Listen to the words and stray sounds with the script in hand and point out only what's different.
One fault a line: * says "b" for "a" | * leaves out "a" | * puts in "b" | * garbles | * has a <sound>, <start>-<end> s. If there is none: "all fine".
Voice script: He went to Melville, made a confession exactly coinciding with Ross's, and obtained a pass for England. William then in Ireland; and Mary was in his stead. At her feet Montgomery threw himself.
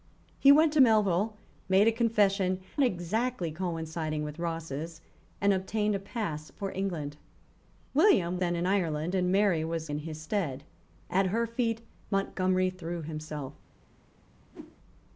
* has a whoosh, 14.5-14.8 s